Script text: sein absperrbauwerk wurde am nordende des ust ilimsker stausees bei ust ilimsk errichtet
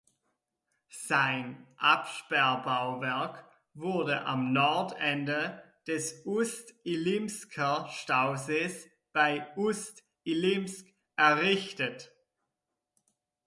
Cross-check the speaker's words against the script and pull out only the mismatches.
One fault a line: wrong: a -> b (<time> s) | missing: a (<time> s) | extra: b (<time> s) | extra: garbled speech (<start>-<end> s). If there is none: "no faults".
no faults